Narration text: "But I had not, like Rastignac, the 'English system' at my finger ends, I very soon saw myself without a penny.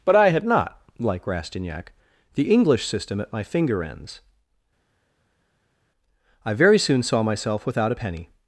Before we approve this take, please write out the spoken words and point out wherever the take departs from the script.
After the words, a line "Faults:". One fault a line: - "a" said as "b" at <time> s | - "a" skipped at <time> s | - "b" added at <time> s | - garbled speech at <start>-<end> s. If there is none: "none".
"But I had not, like Rastignac, the 'English system' at my finger ends, I very soon saw myself without a penny.
Faults:
none